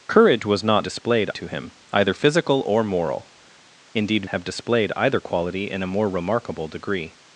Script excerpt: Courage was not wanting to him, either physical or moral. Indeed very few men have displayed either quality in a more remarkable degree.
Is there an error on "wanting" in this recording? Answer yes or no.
yes